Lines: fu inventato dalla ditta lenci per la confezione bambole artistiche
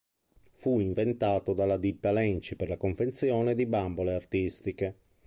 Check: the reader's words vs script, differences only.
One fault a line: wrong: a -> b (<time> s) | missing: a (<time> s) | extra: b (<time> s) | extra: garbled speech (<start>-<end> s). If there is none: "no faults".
extra: di (3.5 s)